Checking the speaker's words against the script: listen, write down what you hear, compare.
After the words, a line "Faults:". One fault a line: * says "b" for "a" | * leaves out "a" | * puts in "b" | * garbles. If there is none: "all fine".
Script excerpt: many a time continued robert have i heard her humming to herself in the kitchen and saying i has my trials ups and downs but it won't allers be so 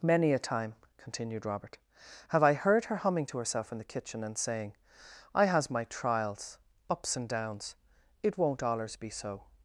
many a time continued robert have i heard her humming to herself in the kitchen and saying i has my trials ups and downs it won't allers be so
Faults:
* leaves out "but"